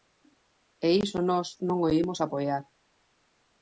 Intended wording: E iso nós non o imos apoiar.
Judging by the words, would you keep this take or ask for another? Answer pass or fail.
pass